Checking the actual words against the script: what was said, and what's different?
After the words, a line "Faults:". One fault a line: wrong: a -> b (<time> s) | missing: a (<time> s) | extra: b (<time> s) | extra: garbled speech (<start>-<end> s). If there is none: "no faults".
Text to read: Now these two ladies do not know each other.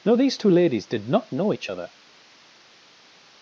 Now these two ladies did not know each other.
Faults:
wrong: do -> did (0.9 s)